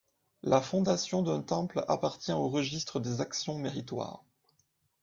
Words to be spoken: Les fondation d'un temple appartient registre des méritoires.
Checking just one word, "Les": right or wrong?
wrong